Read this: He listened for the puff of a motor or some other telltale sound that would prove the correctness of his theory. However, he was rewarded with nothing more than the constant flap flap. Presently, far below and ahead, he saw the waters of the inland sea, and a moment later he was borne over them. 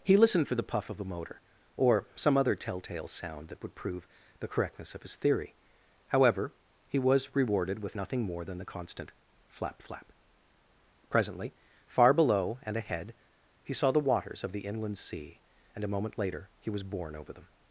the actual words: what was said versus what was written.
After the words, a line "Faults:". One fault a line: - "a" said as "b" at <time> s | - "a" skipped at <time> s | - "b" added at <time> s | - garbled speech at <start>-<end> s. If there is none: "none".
He listened for the puff of a motor or some other telltale sound that would prove the correctness of his theory. However, he was rewarded with nothing more than the constant flap flap. Presently, far below and ahead, he saw the waters of the inland sea, and a moment later he was borne over them.
Faults:
none